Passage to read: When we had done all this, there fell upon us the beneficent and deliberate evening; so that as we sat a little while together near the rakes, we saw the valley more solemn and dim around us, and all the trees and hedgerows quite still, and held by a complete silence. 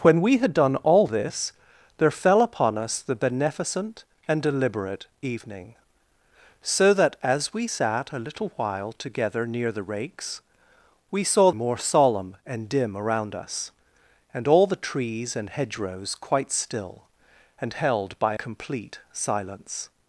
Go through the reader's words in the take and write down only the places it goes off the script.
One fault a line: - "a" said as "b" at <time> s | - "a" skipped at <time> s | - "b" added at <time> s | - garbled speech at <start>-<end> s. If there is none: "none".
- "the valley" skipped at 11.5 s
- "a" skipped at 18.4 s